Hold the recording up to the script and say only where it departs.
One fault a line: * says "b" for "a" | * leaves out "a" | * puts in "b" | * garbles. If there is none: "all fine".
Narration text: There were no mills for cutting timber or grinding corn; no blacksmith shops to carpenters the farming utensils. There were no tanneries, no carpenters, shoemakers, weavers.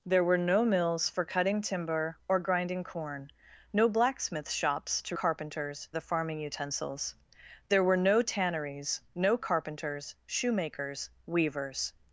all fine